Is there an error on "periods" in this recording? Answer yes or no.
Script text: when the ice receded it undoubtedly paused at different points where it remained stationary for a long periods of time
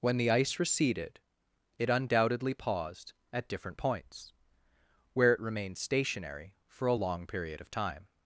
yes